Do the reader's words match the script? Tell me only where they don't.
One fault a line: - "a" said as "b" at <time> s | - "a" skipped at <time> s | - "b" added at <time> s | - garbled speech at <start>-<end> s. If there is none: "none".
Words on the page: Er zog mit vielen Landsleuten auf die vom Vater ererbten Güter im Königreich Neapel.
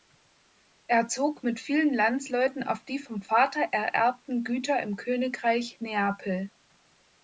none